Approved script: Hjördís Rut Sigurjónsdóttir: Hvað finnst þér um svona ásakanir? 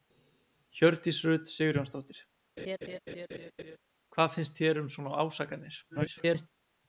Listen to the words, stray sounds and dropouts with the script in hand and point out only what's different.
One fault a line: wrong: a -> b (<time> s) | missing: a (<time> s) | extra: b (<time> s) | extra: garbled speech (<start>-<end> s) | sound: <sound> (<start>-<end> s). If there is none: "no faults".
sound: laugh (2.6-3.8 s)
extra: garbled speech (5.9-6.5 s)